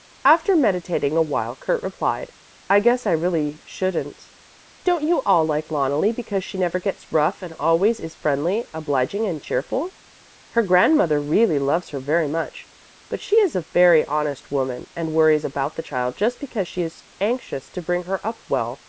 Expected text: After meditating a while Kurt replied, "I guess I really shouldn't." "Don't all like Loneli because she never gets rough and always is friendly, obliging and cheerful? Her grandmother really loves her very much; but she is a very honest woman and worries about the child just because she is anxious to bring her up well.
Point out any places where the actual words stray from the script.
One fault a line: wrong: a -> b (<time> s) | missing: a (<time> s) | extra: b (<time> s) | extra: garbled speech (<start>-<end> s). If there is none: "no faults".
extra: you (5.0 s)